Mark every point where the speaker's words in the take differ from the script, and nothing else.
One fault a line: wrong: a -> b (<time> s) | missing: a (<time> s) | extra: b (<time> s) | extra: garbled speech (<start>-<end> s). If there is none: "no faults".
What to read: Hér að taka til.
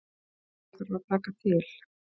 extra: þarf (0.8 s)